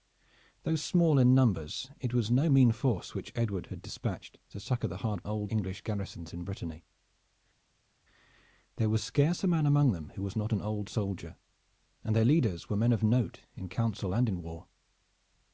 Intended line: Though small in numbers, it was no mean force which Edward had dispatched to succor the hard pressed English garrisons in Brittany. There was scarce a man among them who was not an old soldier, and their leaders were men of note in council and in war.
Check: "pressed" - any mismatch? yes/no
yes